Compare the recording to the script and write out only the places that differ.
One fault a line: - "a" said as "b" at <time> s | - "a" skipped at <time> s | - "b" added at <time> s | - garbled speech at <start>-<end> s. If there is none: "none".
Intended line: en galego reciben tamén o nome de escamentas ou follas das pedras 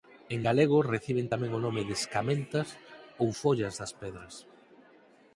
none